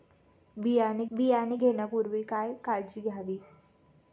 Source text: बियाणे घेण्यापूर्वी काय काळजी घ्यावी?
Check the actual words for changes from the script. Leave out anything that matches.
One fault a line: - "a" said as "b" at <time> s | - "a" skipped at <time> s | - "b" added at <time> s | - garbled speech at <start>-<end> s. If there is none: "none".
- "बियाणे" added at 1.1 s